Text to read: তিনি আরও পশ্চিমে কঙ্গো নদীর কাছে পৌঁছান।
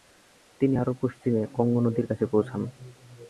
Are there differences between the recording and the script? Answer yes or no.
no